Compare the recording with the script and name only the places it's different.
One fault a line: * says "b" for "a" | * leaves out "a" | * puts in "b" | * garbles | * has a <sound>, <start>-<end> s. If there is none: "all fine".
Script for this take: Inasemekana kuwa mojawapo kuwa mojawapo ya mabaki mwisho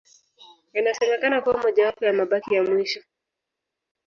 * says "ya mabaki" for "kuwa mojawapo"
* leaves out "mabaki"